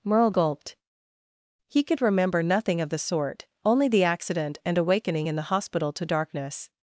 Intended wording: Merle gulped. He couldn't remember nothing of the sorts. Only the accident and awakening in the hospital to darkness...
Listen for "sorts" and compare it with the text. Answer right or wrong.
wrong